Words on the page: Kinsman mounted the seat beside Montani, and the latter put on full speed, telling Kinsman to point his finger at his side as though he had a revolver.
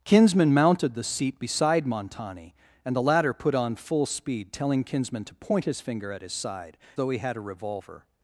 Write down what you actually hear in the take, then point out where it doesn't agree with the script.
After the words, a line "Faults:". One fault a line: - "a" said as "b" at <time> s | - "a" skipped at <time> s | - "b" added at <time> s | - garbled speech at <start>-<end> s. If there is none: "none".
Kinsman mounted the seat beside Montani, and the latter put on full speed, telling Kinsman to point his finger at his side though he had a revolver.
Faults:
- "as" skipped at 6.8 s